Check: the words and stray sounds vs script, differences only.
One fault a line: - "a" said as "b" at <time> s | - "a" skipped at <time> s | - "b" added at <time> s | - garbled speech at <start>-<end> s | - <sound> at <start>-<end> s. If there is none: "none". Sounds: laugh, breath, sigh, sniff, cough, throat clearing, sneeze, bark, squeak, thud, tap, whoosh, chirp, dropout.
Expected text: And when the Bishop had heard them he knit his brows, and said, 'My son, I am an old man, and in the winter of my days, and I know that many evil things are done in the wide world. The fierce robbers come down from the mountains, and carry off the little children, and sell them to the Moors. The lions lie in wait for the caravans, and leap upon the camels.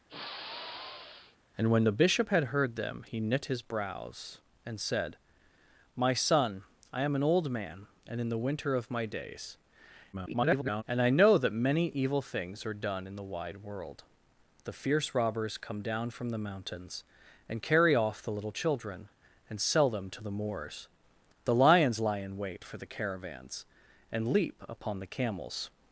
- sigh at 0.1-1.4 s
- garbled speech at 10.1-10.8 s